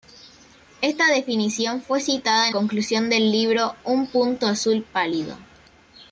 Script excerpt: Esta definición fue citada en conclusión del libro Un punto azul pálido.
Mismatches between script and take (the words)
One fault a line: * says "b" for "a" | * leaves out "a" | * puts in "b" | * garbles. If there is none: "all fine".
all fine